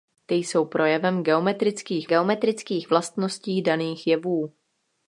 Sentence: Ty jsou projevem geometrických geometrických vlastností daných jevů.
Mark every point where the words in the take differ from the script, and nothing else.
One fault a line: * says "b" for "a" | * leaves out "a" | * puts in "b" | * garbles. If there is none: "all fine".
all fine